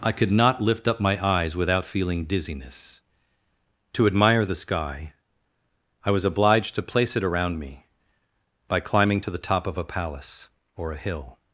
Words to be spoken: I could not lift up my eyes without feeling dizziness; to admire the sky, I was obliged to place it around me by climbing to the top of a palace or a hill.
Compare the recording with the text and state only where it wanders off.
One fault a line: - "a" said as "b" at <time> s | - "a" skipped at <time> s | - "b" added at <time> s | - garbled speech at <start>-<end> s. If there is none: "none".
none